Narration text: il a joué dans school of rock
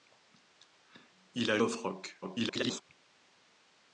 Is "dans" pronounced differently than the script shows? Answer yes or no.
yes